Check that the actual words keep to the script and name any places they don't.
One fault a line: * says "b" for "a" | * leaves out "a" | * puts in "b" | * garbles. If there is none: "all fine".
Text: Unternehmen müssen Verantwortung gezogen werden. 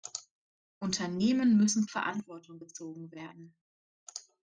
all fine